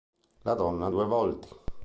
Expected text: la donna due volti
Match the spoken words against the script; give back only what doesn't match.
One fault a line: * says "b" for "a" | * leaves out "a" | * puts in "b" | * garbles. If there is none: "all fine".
all fine